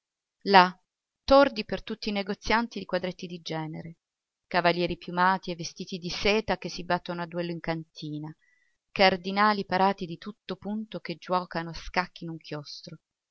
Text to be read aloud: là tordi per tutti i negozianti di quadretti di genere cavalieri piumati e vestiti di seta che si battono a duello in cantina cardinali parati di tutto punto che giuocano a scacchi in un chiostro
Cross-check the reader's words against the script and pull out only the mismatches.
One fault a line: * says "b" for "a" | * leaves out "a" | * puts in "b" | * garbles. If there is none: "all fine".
all fine